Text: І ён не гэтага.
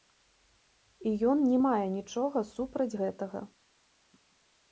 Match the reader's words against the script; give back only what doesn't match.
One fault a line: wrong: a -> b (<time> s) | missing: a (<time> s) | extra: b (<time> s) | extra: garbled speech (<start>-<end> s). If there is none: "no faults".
extra: мае нічога супраць (1.6 s)